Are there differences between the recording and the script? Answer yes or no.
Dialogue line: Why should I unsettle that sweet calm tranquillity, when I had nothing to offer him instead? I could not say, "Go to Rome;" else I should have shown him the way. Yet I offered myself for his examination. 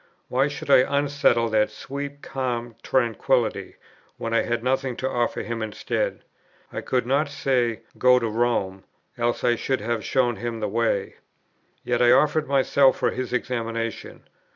no